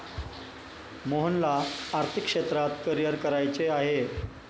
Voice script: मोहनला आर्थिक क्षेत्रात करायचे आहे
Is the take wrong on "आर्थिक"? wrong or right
right